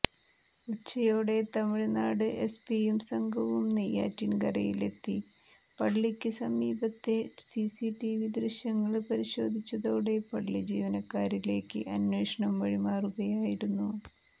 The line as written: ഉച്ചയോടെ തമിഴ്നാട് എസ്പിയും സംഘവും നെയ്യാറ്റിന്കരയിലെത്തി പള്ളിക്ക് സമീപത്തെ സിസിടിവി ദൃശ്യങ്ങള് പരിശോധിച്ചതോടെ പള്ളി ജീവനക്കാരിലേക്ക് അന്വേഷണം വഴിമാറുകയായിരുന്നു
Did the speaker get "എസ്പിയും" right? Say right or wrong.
right